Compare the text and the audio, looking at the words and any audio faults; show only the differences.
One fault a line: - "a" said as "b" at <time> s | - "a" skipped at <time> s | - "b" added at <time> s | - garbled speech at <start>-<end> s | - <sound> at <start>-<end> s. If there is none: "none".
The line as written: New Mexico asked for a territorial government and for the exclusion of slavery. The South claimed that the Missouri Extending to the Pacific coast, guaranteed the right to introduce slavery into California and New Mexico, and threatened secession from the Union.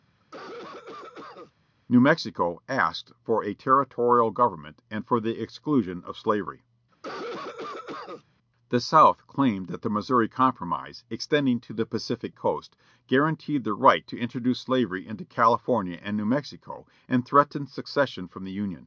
- cough at 0.2-1.5 s
- cough at 6.9-8.2 s
- "Compromise" added at 10.3 s